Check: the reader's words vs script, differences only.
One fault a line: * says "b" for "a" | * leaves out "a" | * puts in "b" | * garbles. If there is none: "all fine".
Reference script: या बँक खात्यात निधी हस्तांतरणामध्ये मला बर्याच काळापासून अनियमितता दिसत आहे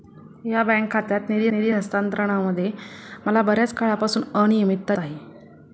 * puts in "निधी"
* leaves out "दिसत"